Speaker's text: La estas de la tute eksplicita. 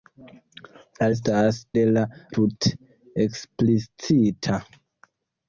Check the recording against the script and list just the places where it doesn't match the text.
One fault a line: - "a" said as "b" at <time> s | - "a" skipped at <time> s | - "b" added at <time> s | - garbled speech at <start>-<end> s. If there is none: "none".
none